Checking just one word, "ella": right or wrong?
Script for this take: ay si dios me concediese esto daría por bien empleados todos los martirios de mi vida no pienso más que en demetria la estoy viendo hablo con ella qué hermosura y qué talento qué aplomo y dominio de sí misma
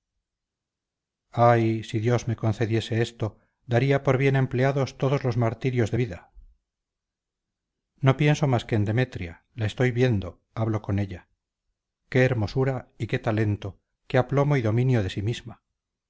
right